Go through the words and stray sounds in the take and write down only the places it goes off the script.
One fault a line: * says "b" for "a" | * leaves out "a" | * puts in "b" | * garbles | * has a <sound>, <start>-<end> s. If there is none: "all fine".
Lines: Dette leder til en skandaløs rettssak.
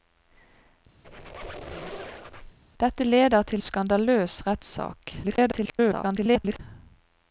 * has a squeak, 1.0-2.6 s
* leaves out "en"
* garbles